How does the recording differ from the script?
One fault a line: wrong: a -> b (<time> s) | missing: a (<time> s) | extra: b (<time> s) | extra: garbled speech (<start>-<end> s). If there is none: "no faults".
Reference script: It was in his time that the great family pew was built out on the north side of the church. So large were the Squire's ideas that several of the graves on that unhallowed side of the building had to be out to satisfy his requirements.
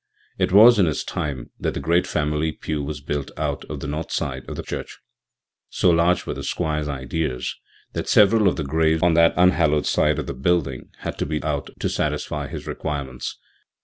no faults